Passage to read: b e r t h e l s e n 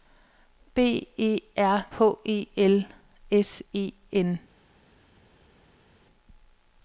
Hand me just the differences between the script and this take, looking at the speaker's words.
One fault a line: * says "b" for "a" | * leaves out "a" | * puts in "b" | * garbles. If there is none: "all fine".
* leaves out "t"